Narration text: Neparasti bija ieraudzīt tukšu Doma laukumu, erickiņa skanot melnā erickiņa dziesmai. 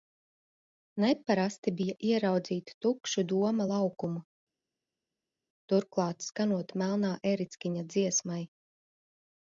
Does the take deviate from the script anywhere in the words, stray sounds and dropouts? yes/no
yes